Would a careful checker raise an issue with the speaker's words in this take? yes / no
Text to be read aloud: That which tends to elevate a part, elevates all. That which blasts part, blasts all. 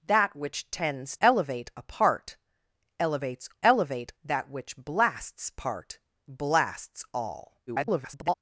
yes